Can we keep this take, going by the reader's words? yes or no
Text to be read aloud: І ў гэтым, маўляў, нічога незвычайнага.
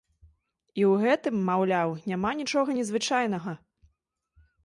no